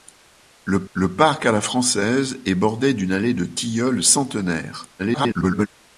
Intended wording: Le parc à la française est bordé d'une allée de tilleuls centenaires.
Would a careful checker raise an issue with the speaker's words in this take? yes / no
yes